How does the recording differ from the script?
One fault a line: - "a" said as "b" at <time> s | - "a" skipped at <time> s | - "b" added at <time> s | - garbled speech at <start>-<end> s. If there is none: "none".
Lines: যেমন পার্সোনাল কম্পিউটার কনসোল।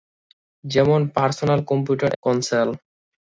none